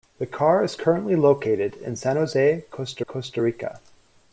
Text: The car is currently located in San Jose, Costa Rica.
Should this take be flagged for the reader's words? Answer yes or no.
yes